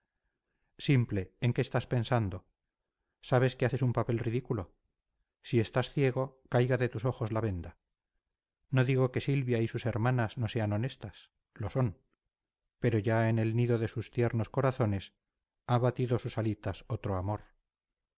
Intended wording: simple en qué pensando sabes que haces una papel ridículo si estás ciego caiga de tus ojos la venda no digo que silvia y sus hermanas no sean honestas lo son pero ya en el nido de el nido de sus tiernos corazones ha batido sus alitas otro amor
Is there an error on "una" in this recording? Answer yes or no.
yes